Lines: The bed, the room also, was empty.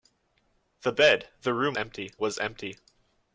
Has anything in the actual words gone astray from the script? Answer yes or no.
yes